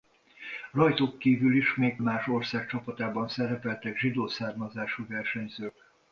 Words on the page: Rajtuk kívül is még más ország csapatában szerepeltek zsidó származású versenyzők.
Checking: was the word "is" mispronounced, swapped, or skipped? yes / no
no